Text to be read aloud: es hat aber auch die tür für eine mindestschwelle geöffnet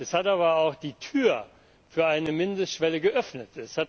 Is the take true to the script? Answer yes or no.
yes